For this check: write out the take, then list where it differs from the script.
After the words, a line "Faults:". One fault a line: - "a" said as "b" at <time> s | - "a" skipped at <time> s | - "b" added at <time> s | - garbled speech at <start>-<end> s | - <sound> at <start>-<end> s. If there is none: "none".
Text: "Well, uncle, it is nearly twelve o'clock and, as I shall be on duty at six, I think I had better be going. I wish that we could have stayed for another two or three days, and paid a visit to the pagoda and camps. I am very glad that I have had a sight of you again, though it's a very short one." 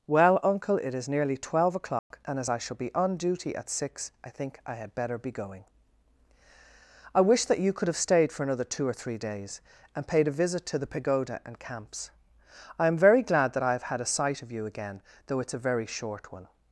"Well, uncle, it is nearly twelve o'clock and, as I shall be on duty at six, I think I had better be going. I wish that you could have stayed for another two or three days, and paid a visit to the pagoda and camps. I am very glad that I have had a sight of you again, though it's a very short one."
Faults:
- dropout at 2.0-2.1 s
- "we" said as "you" at 7.6 s